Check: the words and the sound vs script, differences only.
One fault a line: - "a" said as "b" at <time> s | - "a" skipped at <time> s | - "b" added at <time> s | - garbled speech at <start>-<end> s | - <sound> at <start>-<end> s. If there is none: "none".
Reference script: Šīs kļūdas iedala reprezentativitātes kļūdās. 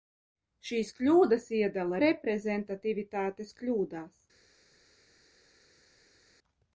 none